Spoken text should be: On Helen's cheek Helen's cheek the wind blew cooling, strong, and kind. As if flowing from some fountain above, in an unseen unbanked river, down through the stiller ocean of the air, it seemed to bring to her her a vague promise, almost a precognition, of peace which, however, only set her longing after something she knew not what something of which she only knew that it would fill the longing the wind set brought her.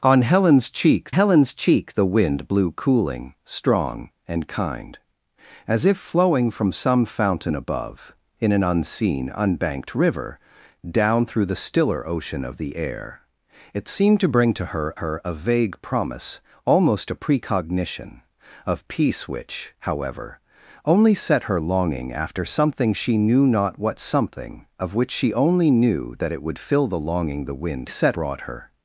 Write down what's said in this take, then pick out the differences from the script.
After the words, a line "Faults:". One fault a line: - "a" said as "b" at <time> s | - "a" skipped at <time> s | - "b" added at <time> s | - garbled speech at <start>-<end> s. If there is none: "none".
On Helen's cheek Helen's cheek the wind blew cooling, strong, and kind. As if flowing from some fountain above, in an unseen unbanked river, down through the stiller ocean of the air, it seemed to bring to her her a vague promise, almost a precognition, of peace which, however, only set her longing after something she knew not what something of which she only knew that it would fill the longing the wind set brought her.
Faults:
none